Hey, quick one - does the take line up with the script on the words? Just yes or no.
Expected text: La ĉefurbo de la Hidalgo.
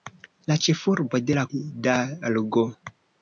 yes